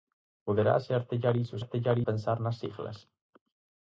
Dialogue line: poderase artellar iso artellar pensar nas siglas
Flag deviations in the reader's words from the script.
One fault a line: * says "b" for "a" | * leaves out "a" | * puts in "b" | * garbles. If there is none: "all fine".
all fine